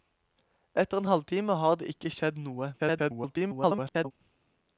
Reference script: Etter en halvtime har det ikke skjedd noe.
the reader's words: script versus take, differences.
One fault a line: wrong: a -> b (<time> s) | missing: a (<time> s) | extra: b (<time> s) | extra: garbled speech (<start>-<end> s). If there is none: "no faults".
extra: garbled speech (2.8-4.1 s)